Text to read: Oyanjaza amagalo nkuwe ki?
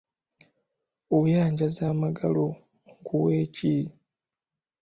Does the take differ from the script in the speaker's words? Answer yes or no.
no